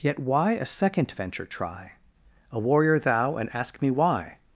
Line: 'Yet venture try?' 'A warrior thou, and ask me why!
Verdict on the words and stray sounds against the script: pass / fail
fail